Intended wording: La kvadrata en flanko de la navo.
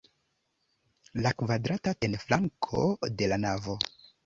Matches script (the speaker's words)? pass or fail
pass